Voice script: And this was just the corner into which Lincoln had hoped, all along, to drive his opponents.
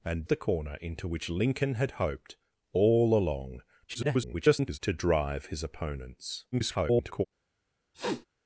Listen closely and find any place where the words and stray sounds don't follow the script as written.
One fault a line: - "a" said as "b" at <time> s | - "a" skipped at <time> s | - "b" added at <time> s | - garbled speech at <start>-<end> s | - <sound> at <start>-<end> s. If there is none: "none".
- "this was just" skipped at 0.2 s
- garbled speech at 3.9-4.8 s
- garbled speech at 6.5-7.2 s
- sniff at 7.9-8.3 s